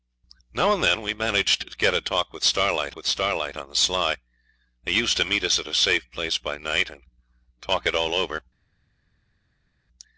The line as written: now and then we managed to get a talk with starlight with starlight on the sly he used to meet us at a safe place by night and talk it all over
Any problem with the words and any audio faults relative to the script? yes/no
no